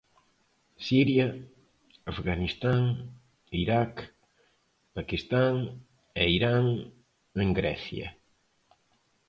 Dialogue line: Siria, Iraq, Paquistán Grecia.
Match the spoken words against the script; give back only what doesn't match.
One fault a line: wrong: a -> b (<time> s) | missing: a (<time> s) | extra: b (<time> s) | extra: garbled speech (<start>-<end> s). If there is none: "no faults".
extra: Afganistán (2.0 s)
extra: e Irán en (6.2 s)